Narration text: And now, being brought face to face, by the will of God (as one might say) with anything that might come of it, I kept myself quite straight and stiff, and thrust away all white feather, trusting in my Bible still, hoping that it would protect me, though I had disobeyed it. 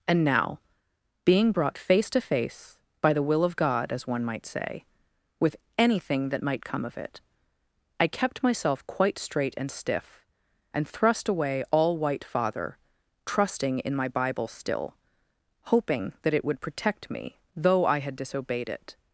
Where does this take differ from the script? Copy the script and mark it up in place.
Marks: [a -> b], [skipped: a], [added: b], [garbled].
And now, being brought face to face, by the will of God (as one might say) with anything that might come of it, I kept myself quite straight and stiff, and thrust away all white [feather, -> father] trusting in my Bible still, hoping that it would protect me, though I had disobeyed it.